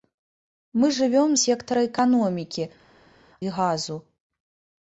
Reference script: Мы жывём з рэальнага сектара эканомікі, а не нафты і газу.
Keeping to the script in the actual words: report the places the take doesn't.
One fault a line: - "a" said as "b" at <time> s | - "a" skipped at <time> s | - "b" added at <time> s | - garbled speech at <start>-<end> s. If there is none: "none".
- "з рэальнага" skipped at 1.4 s
- "а не нафты" skipped at 2.6 s